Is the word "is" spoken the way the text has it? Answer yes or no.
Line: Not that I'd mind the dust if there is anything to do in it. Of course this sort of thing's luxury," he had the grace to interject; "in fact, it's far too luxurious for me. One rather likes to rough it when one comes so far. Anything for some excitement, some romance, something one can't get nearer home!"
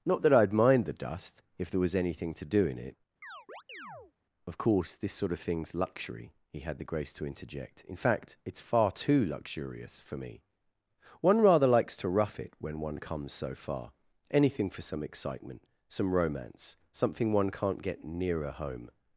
no